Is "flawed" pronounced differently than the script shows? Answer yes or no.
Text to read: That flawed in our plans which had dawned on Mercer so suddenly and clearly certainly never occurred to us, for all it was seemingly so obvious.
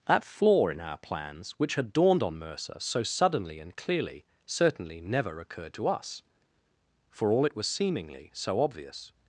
yes